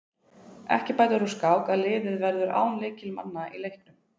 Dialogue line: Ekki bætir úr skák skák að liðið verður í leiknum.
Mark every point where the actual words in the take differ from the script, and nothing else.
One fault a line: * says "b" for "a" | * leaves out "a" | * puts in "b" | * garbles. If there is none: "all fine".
* leaves out "skák"
* puts in "án lykilmanna"